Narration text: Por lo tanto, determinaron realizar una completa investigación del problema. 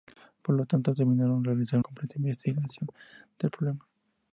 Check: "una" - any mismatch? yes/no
yes